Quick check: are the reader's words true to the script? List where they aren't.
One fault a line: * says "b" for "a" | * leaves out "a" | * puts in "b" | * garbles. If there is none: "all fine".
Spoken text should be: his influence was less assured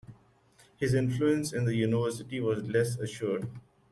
* puts in "in the university"